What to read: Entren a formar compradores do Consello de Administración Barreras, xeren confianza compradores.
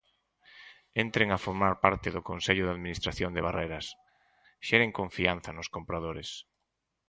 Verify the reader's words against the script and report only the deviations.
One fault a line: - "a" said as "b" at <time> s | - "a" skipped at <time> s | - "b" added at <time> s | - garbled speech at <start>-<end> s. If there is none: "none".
- "compradores" said as "parte" at 1.8 s
- "de" added at 3.3 s
- "nos" added at 5.5 s